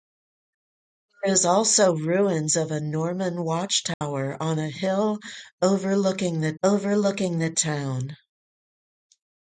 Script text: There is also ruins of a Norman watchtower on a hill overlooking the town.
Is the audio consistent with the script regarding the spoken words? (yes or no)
no